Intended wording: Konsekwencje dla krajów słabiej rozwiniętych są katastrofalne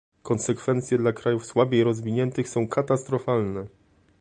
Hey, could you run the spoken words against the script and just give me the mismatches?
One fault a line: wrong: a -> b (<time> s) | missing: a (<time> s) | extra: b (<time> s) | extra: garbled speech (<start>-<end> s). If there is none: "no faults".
no faults